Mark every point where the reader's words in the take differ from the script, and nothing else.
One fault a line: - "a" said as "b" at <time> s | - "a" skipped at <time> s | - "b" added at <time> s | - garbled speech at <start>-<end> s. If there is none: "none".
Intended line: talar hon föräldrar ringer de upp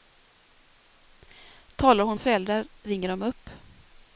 none